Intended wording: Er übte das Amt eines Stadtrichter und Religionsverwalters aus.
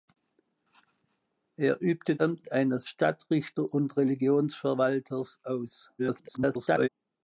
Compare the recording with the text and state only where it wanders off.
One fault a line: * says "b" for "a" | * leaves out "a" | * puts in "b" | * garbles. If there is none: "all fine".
* leaves out "das"
* garbles